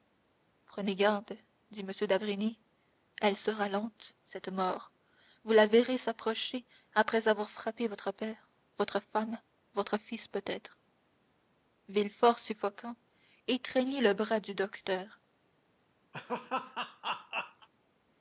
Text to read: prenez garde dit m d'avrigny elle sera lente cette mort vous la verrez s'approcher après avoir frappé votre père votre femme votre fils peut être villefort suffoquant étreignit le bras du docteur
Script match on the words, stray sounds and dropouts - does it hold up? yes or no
no